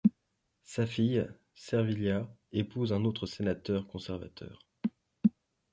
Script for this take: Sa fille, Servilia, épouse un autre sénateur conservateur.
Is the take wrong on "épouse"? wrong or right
right